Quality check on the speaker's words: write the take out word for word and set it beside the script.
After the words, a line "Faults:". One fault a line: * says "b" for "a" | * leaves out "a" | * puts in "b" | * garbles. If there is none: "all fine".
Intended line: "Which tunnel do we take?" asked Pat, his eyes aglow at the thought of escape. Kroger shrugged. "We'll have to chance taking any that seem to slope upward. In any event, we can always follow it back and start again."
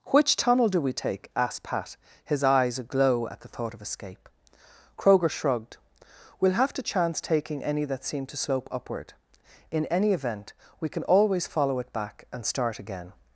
"Which tunnel do we take?" asked Pat, his eyes aglow at the thought of escape. Kroger shrugged. "We'll have to chance taking any that seem to slope upward. In any event, we can always follow it back and start again."
Faults:
all fine